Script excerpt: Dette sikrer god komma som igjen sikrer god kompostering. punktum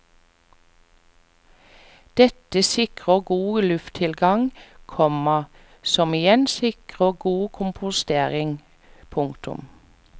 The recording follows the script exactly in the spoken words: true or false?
false